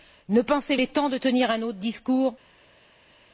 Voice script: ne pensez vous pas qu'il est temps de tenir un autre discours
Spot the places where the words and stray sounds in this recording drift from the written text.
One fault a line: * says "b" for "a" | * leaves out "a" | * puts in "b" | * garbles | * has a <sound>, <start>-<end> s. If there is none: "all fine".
* leaves out "vous pas qu'il"